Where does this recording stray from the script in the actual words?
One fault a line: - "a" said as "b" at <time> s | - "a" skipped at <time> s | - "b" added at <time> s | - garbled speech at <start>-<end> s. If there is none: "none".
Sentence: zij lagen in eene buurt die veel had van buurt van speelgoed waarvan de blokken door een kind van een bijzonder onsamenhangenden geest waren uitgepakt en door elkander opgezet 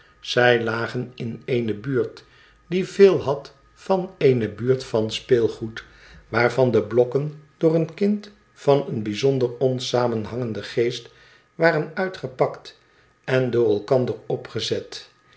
- "eene" added at 4.2 s